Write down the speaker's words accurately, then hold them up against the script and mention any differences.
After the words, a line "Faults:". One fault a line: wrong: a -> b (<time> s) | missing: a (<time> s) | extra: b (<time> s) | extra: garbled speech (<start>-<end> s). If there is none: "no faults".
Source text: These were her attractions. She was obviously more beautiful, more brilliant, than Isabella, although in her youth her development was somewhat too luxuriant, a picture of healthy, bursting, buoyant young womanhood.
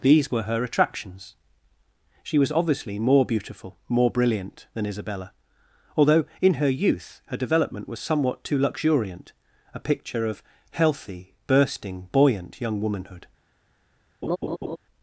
These were her attractions. She was obviously more beautiful, more brilliant, than Isabella, although in her youth her development was somewhat too luxuriant, a picture of healthy, bursting, buoyant young womanhood.
Faults:
no faults